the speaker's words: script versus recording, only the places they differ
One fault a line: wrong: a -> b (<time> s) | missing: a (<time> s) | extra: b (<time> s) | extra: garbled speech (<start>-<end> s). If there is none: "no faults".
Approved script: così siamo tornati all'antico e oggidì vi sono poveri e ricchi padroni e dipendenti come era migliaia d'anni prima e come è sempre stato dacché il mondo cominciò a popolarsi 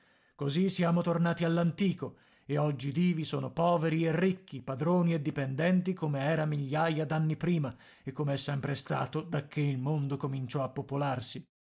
no faults